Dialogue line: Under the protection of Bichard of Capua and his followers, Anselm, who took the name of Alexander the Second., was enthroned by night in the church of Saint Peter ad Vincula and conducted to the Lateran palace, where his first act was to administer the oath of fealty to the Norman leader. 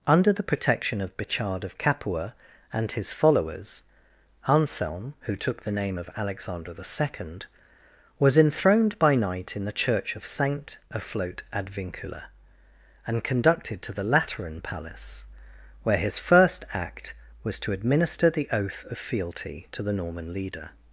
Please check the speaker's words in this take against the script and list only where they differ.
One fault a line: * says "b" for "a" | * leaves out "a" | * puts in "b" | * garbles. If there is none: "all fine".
* says "Afloat" for "Peter"